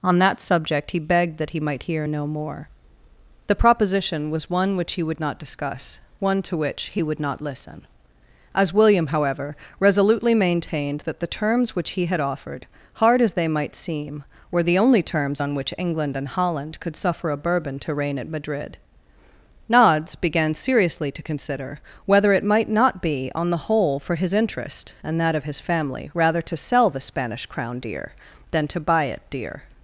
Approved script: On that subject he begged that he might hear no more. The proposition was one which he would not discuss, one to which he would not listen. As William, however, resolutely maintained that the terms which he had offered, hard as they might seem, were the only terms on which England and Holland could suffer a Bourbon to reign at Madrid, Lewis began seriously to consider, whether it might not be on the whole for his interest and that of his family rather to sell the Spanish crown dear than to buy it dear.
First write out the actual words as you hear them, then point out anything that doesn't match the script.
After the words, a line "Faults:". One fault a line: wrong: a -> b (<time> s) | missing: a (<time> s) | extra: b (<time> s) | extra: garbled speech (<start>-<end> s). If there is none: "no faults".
On that subject he begged that he might hear no more. The proposition was one which he would not discuss, one to which he would not listen. As William, however, resolutely maintained that the terms which he had offered, hard as they might seem, were the only terms on which England and Holland could suffer a Bourbon to reign at Madrid, Nods began seriously to consider, whether it might not be on the whole for his interest and that of his family rather to sell the Spanish crown dear than to buy it dear.
Faults:
wrong: Lewis -> Nods (19.7 s)